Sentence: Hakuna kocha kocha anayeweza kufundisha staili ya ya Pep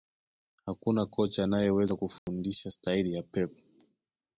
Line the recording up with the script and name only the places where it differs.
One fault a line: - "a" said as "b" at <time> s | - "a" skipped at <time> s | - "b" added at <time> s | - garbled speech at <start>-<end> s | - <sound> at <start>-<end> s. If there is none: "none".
- "kocha" skipped at 1.4 s
- dropout at 2.2-2.3 s
- "ya" skipped at 3.2 s